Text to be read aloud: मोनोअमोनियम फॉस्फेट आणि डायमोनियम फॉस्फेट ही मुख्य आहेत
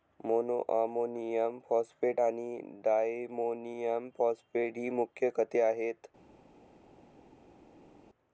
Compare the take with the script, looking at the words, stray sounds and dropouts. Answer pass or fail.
fail